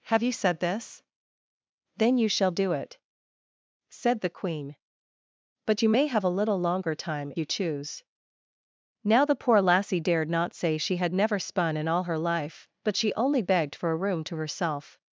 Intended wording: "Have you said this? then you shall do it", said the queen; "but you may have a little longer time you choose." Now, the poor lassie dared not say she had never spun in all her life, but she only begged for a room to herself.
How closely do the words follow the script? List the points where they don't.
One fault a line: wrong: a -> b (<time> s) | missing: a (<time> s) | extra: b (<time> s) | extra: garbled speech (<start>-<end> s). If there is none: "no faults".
no faults